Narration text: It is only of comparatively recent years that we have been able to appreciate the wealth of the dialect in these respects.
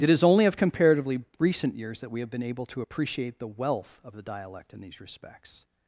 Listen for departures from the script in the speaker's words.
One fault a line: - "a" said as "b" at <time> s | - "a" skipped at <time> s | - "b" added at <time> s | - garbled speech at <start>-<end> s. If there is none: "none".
none